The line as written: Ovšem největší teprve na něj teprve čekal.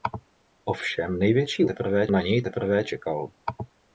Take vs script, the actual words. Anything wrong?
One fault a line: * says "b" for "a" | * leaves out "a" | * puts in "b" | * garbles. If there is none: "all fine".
all fine